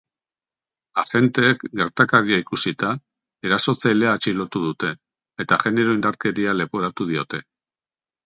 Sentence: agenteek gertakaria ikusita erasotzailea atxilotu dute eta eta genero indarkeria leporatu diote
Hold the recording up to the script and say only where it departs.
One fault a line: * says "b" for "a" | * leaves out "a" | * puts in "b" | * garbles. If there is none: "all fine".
* leaves out "eta"